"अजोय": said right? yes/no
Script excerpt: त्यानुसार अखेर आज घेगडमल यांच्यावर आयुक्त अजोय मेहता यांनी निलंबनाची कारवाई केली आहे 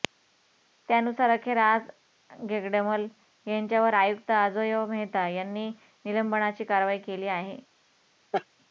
yes